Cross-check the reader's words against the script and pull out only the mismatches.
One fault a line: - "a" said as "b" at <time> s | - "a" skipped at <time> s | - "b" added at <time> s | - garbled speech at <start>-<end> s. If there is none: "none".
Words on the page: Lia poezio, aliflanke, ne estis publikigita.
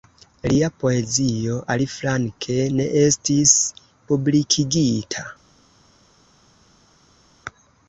none